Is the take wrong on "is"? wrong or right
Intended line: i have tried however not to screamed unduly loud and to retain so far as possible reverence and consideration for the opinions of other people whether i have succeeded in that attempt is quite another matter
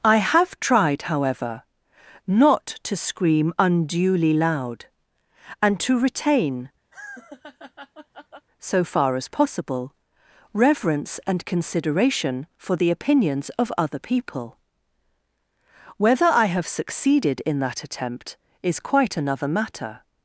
right